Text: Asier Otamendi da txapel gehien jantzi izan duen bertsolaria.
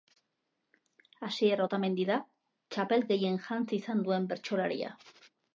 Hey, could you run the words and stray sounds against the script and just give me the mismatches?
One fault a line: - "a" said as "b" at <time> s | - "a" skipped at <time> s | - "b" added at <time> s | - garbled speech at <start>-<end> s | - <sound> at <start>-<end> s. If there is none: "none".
none